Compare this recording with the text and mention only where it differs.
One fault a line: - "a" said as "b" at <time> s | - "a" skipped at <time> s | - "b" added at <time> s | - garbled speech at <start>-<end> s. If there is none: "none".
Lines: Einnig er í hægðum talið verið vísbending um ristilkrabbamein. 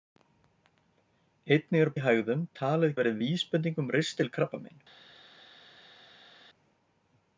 none